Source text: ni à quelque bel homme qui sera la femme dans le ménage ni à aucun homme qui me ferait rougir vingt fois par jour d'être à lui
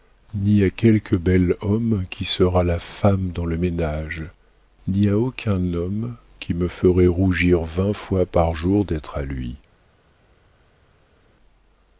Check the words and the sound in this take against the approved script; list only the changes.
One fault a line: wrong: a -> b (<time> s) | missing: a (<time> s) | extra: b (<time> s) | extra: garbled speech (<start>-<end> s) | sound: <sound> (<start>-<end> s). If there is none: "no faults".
no faults